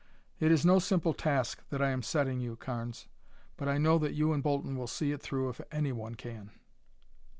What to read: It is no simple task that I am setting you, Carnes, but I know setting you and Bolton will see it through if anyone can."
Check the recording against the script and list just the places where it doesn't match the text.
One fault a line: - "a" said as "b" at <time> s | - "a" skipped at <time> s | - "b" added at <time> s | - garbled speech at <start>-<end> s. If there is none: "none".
- "setting" said as "that" at 4.0 s